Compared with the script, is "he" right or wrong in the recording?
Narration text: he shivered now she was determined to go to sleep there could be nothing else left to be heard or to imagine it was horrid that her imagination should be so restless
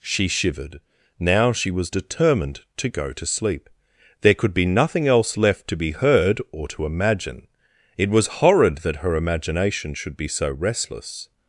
wrong